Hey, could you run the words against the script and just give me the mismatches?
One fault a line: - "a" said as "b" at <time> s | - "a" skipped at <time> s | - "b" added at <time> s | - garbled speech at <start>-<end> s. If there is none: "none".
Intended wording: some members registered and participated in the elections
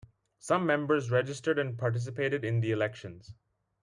none